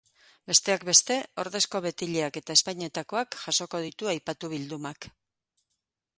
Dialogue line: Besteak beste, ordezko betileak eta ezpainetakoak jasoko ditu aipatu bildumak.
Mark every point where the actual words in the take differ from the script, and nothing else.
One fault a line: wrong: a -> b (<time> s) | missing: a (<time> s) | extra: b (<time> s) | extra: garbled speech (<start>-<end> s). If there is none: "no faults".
no faults